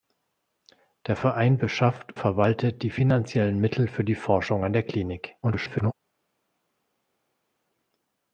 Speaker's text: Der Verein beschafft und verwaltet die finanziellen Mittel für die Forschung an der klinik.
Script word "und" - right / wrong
wrong